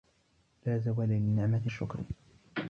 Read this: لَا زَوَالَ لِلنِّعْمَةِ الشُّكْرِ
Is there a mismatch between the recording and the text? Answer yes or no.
no